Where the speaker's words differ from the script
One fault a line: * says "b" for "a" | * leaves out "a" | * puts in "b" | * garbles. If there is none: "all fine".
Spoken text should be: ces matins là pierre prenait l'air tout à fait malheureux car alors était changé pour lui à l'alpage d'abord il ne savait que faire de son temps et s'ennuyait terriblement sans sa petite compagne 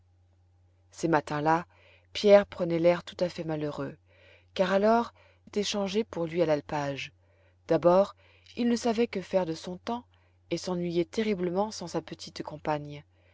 all fine